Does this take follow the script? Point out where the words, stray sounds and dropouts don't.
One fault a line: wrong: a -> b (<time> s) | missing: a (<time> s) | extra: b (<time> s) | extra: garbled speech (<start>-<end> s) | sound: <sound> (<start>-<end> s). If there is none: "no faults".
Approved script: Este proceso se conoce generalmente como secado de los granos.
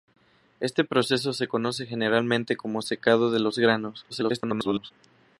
extra: garbled speech (4.1-4.9 s)